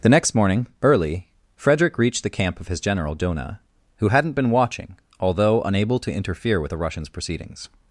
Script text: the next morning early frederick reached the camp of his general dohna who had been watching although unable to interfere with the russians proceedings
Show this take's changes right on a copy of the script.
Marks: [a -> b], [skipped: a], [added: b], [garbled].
the next morning early frederick reached the camp of his general dohna who [had -> hadn't] been watching although unable to interfere with the russians proceedings